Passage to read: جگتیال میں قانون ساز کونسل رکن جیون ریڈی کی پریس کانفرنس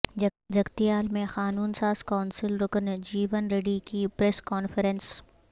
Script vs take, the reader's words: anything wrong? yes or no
no